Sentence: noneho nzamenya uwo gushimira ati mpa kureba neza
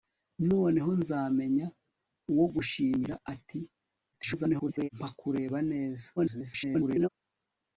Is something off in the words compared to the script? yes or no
yes